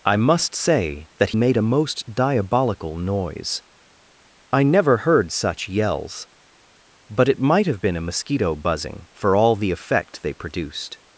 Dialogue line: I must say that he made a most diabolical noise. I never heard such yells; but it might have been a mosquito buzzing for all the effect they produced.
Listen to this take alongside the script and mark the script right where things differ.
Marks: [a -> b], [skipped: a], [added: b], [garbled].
I must say that [skipped: he] made a most diabolical noise. I never heard such yells; but it might have been a mosquito buzzing for all the effect they produced.